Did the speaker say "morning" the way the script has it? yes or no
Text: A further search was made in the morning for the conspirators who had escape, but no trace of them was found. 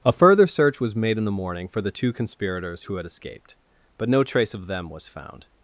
yes